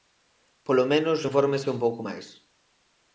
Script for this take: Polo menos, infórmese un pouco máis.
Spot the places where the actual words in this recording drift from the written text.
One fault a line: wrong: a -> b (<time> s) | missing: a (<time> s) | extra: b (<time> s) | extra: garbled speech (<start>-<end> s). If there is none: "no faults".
no faults